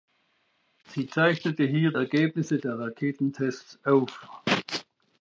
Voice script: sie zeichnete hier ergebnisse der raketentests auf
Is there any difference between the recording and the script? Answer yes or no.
no